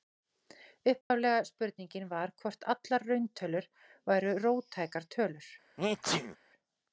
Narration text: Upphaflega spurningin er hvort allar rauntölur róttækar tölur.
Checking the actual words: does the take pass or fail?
fail